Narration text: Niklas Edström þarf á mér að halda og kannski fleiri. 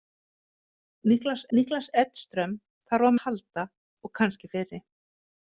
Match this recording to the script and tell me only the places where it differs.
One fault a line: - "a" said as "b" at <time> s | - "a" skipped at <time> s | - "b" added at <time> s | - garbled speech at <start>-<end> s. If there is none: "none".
- "niklas" added at 1.6 s
- "mér" skipped at 3.1 s